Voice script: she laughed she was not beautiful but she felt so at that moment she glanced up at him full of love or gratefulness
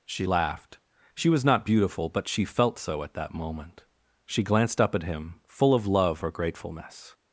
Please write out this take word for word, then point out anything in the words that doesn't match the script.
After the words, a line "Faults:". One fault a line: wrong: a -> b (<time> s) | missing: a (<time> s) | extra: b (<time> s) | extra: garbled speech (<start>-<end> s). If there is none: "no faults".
she laughed she was not beautiful but she felt so at that moment she glanced up at him full of love or gratefulness
Faults:
no faults